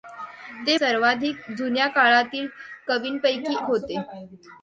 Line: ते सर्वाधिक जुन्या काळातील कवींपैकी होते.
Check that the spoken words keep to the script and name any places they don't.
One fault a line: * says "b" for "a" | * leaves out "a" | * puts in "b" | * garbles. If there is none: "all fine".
all fine